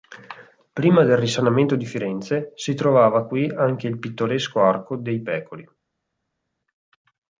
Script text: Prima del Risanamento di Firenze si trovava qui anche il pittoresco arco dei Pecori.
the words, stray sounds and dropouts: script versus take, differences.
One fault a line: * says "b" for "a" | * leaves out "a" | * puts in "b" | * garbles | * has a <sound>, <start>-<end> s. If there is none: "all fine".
all fine